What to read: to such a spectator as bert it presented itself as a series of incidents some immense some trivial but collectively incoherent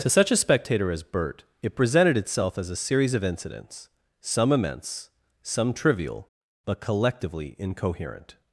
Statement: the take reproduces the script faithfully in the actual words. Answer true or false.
true